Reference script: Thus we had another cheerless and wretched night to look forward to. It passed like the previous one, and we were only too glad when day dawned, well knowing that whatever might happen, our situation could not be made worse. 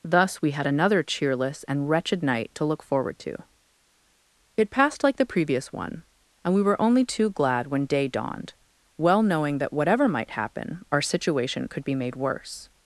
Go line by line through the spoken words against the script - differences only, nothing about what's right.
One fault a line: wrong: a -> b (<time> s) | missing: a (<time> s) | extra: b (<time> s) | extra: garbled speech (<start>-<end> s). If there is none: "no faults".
missing: not (11.8 s)